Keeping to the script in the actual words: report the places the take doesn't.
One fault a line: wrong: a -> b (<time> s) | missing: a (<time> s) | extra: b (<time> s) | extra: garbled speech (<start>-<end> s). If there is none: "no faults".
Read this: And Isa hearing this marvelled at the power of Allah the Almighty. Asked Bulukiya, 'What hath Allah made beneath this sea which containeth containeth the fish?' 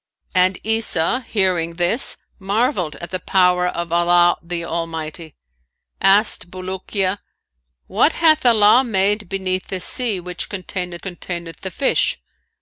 no faults